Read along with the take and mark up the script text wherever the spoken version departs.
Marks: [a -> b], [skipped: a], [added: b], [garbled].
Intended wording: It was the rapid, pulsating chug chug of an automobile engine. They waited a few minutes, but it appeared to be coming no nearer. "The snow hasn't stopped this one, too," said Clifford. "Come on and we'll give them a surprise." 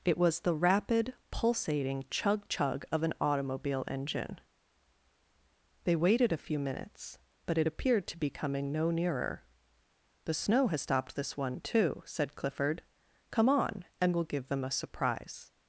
It was the rapid, pulsating chug chug of an automobile engine. They waited a few minutes, but it appeared to be coming no nearer. "The snow [hasn't -> has] stopped this one, too," said Clifford. "Come on and we'll give them a surprise."